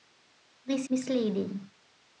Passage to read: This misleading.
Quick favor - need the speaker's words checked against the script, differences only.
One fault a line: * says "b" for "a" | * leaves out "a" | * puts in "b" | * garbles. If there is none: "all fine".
all fine